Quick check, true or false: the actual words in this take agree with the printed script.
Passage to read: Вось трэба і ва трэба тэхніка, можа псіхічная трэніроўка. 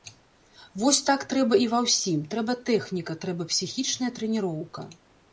false